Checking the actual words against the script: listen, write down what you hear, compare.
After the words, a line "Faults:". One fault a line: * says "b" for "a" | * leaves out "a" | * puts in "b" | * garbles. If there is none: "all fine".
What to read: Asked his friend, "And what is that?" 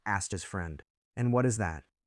Asked his friend, "And what is that?"
Faults:
all fine